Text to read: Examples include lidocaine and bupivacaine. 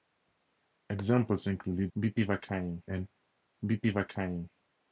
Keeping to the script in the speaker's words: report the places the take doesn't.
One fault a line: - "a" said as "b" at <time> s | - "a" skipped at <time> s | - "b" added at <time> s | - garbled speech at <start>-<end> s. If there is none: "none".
- "lidocaine" said as "bupivacaine" at 2.0 s